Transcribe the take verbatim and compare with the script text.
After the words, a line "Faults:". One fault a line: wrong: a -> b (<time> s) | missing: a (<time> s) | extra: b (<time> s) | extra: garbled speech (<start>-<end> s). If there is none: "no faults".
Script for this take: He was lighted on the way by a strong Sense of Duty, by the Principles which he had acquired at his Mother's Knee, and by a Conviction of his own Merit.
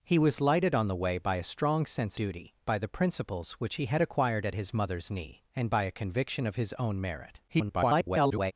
He was lighted on the way by a strong Sense Duty, by the Principles which he had acquired at his Mother's Knee, and by a Conviction of his own Merit. [garbled]
Faults:
missing: of (2.2 s)
extra: garbled speech (7.5-8.5 s)